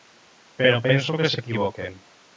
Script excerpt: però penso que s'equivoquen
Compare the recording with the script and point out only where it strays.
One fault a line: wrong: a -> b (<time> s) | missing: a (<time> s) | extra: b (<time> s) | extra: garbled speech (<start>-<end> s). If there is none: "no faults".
no faults